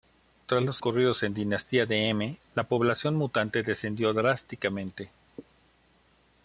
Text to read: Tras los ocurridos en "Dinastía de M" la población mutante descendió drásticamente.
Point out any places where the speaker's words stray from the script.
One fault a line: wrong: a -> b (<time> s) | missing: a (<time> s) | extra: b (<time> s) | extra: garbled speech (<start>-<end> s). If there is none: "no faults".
no faults